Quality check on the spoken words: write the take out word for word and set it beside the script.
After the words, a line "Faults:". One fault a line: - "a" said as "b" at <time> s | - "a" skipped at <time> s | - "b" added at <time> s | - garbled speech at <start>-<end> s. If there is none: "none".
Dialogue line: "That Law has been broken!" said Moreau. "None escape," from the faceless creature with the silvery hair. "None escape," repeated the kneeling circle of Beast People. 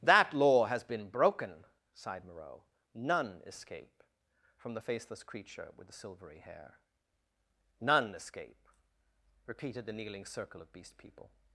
"That Law has been broken!" sighed Moreau. "None escape," from the faceless creature with the silvery hair. "None escape," repeated the kneeling circle of Beast People.
Faults:
- "said" said as "sighed" at 1.9 s